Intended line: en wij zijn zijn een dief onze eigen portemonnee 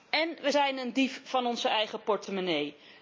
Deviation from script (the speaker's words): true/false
true